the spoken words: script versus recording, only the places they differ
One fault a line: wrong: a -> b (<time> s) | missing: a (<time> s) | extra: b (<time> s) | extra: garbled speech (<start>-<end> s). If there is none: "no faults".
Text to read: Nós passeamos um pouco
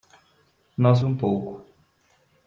missing: passeamos (1.0 s)